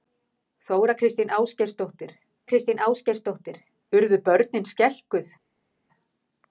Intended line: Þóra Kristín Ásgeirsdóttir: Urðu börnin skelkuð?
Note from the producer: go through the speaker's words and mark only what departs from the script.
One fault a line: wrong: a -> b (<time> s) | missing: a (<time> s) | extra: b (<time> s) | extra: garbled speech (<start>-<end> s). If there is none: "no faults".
extra: Kristín Ásgeirsdóttir (2.5 s)